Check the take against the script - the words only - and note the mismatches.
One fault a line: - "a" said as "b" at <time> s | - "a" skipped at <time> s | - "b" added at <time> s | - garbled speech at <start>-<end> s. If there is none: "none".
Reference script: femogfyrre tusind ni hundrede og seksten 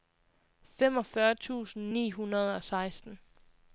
none